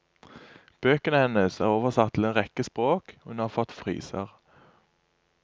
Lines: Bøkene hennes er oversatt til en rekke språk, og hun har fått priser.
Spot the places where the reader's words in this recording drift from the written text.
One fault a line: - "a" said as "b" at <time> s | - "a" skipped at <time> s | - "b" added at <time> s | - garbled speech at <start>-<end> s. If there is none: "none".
none